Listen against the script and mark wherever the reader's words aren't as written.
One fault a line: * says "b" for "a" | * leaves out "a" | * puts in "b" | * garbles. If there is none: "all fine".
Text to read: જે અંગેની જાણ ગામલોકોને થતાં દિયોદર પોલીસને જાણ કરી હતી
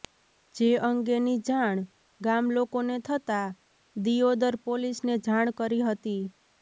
all fine